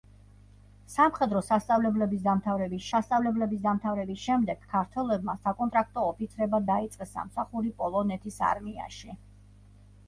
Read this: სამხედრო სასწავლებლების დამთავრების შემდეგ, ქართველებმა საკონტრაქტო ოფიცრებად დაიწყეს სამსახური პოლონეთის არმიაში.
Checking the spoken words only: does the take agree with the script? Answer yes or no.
no